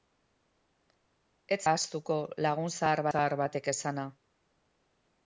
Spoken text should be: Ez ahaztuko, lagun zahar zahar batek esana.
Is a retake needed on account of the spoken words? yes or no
no